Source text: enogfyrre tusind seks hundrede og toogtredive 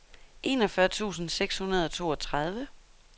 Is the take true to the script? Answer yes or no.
yes